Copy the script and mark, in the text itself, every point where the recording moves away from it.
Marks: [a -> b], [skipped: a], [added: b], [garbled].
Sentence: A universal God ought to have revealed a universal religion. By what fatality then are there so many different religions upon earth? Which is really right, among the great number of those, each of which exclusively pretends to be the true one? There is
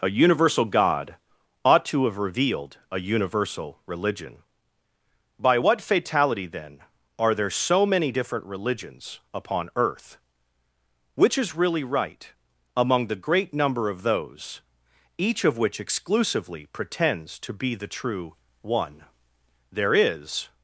A universal God ought to have revealed a universal religion. By what fatality then are there so many different religions upon earth? Which is really right, among the great number of those, each of which exclusively pretends to be the true one? There is